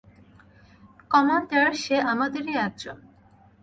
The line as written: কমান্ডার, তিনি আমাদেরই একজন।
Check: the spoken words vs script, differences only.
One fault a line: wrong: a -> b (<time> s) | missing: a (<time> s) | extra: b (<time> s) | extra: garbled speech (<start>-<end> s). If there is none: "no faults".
wrong: তিনি -> সে (1.8 s)